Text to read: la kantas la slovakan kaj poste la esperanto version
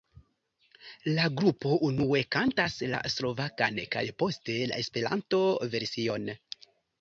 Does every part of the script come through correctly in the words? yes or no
no